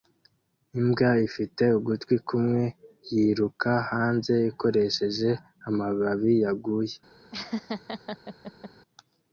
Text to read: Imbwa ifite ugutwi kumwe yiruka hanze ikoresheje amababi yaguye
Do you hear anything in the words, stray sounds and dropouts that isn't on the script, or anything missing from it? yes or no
yes